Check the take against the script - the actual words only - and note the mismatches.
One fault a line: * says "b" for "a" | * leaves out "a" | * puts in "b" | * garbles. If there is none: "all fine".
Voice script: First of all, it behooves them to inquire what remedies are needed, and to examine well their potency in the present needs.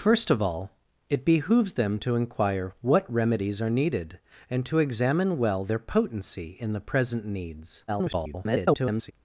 * garbles